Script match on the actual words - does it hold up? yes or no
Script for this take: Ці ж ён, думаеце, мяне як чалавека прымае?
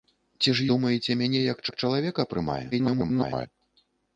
no